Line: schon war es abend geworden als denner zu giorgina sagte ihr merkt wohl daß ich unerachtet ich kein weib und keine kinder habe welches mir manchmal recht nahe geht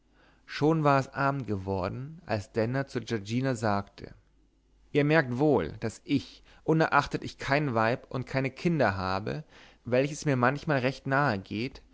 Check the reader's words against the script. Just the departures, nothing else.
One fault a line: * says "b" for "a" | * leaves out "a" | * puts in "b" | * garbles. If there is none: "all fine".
all fine